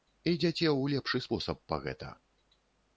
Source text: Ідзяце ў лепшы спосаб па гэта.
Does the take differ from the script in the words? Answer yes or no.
no